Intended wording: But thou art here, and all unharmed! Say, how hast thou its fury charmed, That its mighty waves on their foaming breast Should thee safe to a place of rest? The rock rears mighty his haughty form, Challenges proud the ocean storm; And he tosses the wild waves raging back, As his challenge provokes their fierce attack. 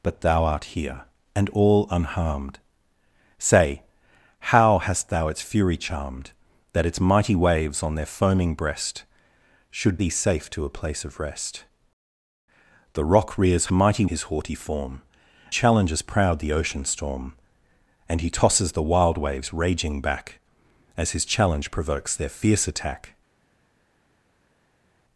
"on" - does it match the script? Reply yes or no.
yes